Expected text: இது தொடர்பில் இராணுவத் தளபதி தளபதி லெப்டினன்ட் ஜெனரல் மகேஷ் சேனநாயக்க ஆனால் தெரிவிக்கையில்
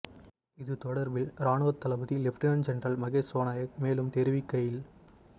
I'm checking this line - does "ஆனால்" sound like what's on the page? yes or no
no